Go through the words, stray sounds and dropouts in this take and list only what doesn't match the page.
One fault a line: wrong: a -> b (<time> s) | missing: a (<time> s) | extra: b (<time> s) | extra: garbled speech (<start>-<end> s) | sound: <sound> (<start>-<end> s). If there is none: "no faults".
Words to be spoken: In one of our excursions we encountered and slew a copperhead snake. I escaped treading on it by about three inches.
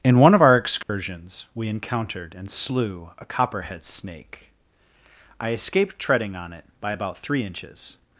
sound: dropout (0.8-0.9 s)